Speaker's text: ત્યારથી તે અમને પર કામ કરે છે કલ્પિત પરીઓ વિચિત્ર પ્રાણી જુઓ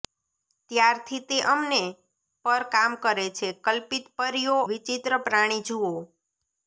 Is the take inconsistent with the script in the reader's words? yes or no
no